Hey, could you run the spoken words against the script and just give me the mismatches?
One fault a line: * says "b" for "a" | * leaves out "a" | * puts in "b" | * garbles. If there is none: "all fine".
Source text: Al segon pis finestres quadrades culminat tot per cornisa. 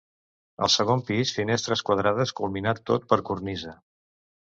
all fine